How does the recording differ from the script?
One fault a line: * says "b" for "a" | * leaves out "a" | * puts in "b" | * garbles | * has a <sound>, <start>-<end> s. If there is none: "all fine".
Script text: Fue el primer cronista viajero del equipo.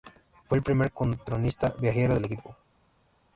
all fine